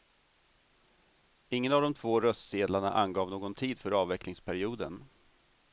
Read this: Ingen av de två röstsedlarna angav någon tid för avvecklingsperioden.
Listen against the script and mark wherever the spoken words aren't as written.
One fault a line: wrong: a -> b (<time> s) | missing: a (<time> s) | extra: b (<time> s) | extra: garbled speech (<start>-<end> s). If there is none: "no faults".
no faults